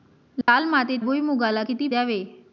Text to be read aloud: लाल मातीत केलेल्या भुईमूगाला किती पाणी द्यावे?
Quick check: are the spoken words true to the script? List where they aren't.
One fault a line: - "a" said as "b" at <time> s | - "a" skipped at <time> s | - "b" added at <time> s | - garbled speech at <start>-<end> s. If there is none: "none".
- "केलेल्या" skipped at 1.0 s
- "पाणी" skipped at 1.9 s